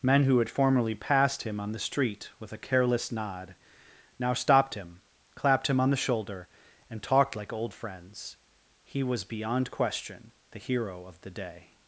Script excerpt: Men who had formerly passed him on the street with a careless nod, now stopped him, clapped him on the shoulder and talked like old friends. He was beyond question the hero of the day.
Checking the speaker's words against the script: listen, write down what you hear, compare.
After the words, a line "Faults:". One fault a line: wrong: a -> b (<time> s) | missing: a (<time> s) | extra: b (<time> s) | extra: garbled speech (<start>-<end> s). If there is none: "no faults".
Men who had formerly passed him on the street with a careless nod, now stopped him, clapped him on the shoulder and talked like old friends. He was beyond question the hero of the day.
Faults:
no faults